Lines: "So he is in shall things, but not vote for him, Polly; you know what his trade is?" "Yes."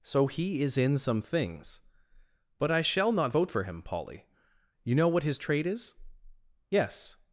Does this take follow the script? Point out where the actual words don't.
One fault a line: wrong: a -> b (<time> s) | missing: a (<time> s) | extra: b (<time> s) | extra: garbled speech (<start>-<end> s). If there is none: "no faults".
wrong: shall -> some (1.0 s)
extra: I shall (2.7 s)